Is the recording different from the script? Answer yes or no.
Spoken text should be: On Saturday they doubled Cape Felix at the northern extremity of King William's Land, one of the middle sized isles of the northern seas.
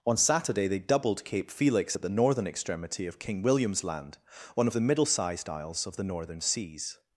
no